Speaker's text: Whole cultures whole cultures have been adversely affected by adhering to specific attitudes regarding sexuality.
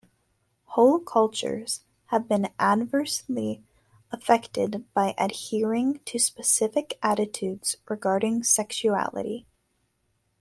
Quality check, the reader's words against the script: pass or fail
fail